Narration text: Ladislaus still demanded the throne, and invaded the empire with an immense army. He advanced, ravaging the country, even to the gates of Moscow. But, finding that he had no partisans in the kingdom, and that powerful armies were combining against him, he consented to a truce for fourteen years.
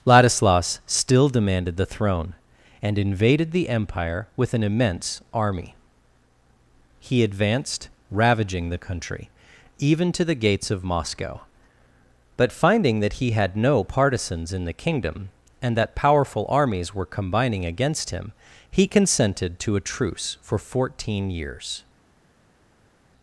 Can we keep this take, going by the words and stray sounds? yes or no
yes